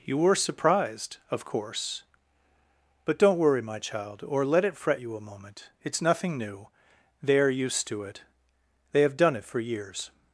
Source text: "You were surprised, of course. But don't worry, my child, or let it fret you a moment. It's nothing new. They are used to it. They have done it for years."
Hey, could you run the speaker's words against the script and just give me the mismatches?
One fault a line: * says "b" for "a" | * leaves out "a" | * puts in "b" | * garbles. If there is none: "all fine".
all fine